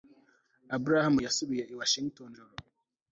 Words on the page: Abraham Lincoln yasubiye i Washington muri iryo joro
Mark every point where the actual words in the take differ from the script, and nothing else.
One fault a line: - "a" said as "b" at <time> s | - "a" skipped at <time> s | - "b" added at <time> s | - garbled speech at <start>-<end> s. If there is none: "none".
- "Lincoln" skipped at 1.1 s
- "muri iryo" skipped at 2.3 s